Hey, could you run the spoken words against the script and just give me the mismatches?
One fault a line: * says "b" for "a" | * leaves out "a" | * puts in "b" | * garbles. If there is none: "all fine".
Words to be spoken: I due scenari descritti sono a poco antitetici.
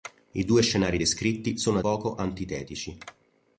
all fine